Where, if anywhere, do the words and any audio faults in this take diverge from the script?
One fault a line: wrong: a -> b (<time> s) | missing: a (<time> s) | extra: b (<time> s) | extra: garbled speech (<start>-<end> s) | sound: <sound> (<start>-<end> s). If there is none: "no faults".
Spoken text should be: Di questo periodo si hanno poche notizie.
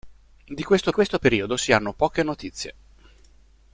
extra: questo (0.9 s)